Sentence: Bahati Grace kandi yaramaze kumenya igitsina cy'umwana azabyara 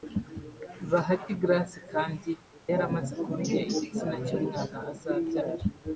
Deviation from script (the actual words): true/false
false